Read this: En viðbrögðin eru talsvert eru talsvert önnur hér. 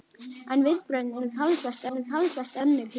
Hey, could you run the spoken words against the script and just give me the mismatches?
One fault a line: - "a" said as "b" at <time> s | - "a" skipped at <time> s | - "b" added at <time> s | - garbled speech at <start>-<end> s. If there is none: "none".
none